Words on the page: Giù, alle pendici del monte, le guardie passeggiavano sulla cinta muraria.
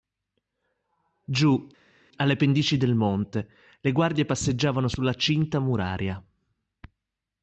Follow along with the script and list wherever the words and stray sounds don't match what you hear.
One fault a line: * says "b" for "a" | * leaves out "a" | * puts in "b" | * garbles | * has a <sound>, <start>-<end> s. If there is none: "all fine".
all fine